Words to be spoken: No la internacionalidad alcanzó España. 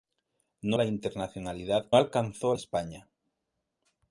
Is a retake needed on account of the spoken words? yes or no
no